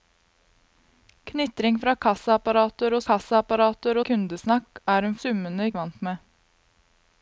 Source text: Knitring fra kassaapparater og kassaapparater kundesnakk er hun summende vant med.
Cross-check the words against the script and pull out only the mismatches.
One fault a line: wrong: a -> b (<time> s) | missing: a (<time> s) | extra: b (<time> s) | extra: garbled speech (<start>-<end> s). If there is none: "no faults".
no faults